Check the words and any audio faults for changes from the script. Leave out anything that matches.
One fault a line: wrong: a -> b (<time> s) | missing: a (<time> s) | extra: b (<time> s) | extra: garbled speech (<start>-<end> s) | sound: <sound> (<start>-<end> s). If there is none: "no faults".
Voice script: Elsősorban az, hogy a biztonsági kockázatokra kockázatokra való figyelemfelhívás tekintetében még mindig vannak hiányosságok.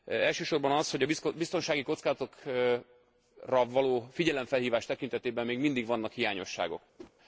missing: kockázatokra (2.8 s)
sound: whoosh (7.0-7.1 s)